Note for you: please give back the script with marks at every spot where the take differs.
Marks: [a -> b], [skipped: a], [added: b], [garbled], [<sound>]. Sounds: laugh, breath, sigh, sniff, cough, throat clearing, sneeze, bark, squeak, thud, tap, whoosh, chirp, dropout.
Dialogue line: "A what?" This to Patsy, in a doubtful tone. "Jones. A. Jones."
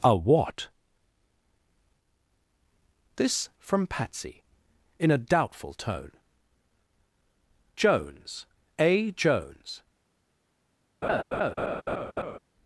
"A what?" This [to -> from] Patsy, in a doubtful tone. "Jones. A. Jones." [laugh]